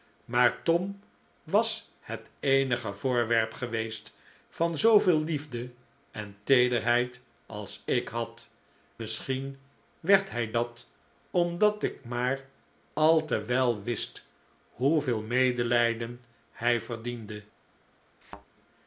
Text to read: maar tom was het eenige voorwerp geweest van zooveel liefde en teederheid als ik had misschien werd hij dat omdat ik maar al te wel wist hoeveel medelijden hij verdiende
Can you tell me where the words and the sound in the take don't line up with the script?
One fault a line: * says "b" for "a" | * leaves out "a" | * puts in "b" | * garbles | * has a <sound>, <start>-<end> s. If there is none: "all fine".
* has a thud, 18.2-18.5 s